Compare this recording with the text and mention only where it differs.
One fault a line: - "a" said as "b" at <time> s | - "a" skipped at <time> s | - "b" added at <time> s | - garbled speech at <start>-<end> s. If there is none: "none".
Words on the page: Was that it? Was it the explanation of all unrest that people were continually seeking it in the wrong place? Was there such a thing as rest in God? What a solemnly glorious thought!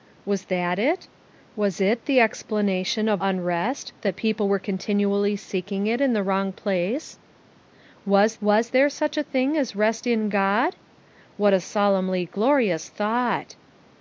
- "all" skipped at 3.2 s
- "was" added at 8.4 s